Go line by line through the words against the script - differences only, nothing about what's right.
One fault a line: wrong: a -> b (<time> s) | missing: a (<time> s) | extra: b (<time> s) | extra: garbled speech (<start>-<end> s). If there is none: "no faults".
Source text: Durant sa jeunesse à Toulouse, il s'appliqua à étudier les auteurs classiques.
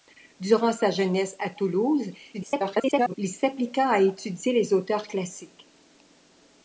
extra: garbled speech (2.3-3.1 s)